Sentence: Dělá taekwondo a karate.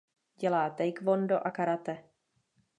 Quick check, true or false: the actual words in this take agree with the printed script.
true